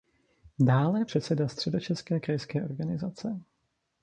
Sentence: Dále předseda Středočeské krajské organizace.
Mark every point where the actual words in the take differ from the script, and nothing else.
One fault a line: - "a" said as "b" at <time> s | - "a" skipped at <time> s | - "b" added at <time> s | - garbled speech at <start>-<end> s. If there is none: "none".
none